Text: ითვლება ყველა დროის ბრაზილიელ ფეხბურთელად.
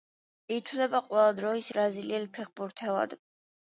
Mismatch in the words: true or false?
false